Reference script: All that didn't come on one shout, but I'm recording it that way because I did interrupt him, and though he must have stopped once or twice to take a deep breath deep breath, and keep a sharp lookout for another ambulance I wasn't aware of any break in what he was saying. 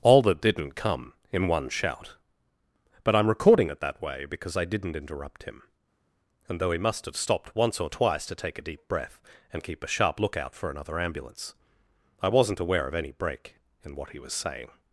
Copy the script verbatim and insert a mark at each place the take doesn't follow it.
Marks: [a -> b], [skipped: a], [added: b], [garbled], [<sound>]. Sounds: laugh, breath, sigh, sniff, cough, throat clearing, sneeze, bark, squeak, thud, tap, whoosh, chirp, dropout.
All that didn't come [on -> in] one shout, but I'm recording it that way because I [did -> didn't] interrupt him, and though he must have stopped once or twice to take a deep breath [skipped: deep breath,] and keep a sharp lookout for another ambulance I wasn't aware of any break in what he was saying.